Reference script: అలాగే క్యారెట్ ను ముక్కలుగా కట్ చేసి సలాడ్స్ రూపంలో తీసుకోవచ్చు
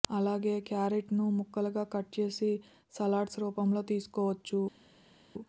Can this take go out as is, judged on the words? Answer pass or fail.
pass